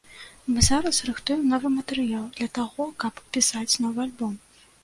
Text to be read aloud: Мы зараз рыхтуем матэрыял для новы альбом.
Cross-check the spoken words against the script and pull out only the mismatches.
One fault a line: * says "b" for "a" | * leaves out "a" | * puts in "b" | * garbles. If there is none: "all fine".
* puts in "новы"
* puts in "таго каб пісаць"